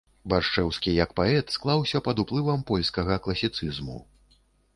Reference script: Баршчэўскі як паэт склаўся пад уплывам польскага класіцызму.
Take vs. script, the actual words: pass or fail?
pass